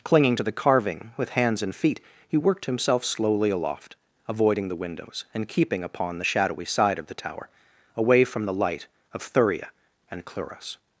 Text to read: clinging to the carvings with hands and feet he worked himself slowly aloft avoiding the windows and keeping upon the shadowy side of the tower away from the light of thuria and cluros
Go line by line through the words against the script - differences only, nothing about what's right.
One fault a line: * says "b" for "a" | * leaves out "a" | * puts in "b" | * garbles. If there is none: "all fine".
* says "carving" for "carvings"